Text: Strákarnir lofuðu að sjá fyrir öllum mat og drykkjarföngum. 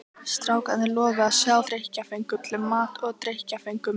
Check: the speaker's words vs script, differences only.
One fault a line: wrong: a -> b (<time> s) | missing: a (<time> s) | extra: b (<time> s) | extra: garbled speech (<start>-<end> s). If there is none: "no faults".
wrong: fyrir -> drykkjarföngum (1.7 s)